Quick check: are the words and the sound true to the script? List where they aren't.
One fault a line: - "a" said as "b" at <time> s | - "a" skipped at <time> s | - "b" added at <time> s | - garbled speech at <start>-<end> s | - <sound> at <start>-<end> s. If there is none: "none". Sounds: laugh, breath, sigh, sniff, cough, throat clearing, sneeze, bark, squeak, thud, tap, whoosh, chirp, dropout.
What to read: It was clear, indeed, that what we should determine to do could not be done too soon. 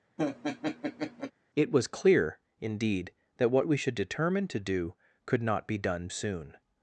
- laugh at 0.2-1.3 s
- "too" skipped at 6.1 s